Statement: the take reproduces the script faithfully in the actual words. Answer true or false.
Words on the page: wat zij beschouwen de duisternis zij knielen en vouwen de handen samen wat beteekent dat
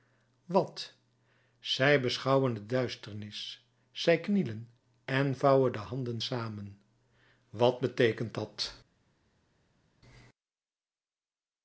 true